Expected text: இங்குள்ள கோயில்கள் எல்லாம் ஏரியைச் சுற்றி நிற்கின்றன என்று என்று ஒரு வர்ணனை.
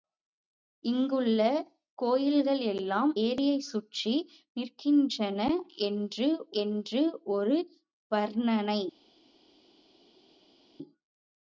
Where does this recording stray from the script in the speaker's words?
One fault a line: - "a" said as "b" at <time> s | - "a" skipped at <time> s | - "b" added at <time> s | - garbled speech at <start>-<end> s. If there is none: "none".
none